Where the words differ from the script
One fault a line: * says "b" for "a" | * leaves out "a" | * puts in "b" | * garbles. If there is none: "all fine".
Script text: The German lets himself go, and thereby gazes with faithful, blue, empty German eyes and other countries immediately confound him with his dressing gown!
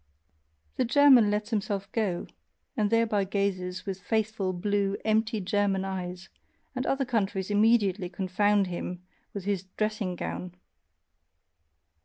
all fine